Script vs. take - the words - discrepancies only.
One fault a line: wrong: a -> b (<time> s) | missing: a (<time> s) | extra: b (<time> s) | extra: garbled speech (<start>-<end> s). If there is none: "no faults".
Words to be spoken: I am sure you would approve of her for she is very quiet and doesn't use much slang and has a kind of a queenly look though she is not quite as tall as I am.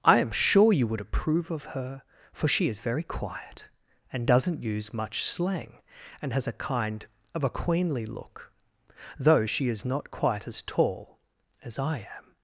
no faults